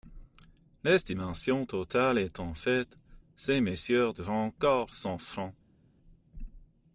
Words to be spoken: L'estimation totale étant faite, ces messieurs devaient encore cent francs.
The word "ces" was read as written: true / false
true